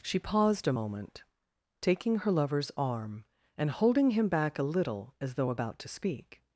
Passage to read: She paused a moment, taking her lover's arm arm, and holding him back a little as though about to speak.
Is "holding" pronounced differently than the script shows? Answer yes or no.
no